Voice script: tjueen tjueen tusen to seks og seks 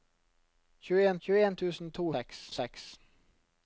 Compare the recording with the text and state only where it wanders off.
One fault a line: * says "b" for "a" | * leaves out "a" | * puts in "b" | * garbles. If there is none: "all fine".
all fine